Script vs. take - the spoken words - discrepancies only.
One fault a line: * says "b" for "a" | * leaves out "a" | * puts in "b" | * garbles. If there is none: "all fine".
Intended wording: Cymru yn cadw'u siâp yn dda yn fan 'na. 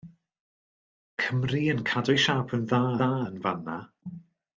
* puts in "dda"